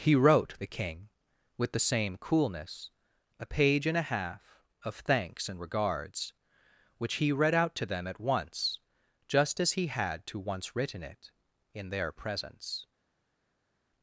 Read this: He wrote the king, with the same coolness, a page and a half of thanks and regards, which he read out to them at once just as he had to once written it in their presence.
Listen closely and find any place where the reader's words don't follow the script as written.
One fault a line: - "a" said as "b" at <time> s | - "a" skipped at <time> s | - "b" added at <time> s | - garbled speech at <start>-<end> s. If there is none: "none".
none